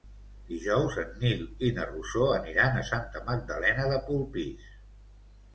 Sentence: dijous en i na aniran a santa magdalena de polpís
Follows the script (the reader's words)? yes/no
no